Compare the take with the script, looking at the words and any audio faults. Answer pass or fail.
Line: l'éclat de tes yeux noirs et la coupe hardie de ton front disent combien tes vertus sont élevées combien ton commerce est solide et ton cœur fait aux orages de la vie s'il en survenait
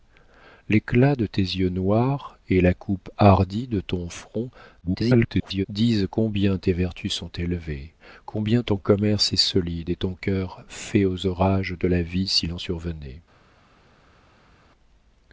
fail